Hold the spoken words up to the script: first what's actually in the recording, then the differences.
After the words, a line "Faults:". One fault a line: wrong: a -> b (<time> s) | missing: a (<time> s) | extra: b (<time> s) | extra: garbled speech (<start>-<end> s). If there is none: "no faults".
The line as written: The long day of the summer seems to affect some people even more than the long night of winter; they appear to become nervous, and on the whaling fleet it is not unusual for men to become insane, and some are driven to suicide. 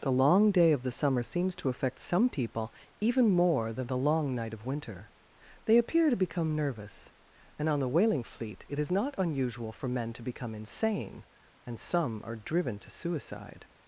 The long day of the summer seems to affect some people even more than the long night of winter; they appear to become nervous, and on the whaling fleet it is not unusual for men to become insane, and some are driven to suicide.
Faults:
no faults